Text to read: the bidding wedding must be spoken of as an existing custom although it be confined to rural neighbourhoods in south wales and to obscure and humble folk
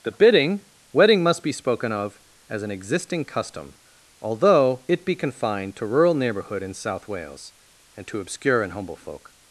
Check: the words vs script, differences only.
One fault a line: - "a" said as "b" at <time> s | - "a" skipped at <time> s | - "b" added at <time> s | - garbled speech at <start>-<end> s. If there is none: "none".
- "neighbourhoods" said as "neighbourhood" at 6.2 s